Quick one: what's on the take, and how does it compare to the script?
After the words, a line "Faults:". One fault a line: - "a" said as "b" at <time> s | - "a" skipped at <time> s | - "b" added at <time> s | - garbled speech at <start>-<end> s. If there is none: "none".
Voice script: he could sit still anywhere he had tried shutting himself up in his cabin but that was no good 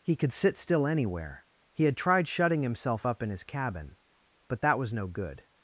he could sit still anywhere he had tried shutting himself up in his cabin but that was no good
Faults:
none